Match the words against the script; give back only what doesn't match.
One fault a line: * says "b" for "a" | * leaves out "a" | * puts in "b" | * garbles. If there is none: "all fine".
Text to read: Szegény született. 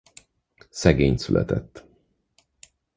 all fine